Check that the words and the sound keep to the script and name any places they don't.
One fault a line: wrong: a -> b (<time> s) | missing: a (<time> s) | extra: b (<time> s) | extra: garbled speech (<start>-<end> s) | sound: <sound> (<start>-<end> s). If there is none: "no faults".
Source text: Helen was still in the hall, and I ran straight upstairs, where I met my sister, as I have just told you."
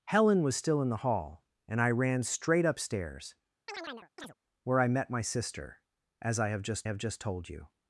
sound: chirp (3.7-4.3 s)
extra: have just (6.9 s)